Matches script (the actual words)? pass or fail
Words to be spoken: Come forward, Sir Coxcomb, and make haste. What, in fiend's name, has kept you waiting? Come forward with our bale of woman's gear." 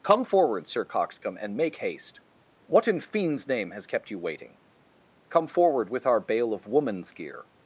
pass